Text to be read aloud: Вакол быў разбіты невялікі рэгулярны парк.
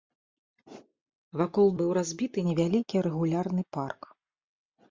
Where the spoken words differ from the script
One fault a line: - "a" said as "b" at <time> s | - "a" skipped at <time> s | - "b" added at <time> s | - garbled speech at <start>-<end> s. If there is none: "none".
none